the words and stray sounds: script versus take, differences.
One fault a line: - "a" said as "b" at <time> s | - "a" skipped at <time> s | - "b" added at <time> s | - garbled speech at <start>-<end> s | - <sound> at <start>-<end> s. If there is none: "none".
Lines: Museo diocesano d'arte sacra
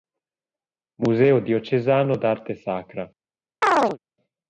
- chirp at 3.6-4.0 s